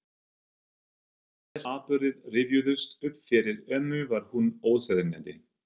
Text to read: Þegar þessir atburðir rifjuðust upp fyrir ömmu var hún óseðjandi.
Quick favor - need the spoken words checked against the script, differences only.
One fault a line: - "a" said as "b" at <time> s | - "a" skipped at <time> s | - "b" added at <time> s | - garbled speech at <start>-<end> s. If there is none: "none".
- "þessir" skipped at 1.6 s